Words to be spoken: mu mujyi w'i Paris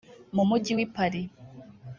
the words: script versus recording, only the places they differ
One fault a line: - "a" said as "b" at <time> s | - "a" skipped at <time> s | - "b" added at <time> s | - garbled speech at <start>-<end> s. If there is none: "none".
none